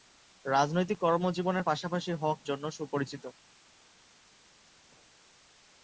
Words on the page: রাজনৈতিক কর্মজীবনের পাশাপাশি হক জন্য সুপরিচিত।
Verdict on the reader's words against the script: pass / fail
pass